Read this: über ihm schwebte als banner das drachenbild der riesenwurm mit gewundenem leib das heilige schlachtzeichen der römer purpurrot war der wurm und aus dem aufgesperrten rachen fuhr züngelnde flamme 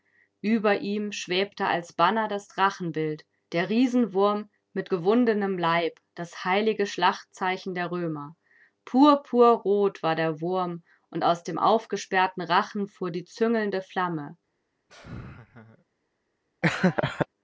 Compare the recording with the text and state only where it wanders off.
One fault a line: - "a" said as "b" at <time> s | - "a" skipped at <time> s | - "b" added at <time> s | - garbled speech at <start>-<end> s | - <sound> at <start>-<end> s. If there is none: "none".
- "die" added at 13.1 s
- laugh at 14.9-15.8 s
- laugh at 16.6-17.3 s